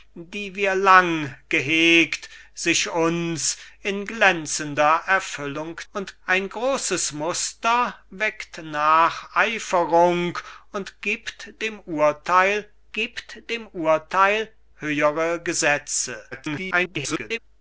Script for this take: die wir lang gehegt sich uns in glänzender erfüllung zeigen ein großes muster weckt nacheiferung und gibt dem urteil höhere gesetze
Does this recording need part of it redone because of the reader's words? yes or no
yes